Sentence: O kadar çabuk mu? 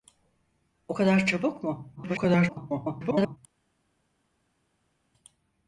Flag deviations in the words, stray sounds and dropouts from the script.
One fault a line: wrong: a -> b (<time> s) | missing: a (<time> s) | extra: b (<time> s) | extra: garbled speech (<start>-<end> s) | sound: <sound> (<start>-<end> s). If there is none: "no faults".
extra: garbled speech (2.0-3.4 s)